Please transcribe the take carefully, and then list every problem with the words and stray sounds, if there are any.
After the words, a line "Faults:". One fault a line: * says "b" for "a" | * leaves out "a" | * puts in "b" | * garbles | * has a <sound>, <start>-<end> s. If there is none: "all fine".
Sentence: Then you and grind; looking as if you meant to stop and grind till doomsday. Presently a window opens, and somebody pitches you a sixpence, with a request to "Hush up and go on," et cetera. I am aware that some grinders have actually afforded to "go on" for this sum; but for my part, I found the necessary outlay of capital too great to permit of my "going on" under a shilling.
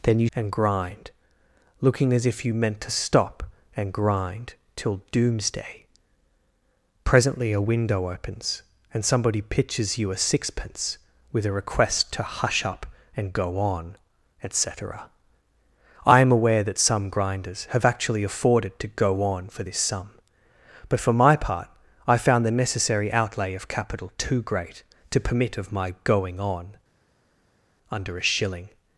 Then you and grind; looking as if you meant to stop and grind till doomsday. Presently a window opens, and somebody pitches you a sixpence, with a request to "Hush up and go on," et cetera. I am aware that some grinders have actually afforded to "go on" for this sum; but for my part, I found the necessary outlay of capital too great to permit of my "going on" under a shilling.
Faults:
all fine